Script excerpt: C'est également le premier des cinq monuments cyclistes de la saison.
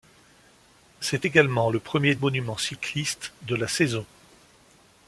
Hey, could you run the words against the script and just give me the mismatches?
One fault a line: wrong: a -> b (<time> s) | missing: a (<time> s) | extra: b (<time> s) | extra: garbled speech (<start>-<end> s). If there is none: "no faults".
missing: des cinq (2.1 s)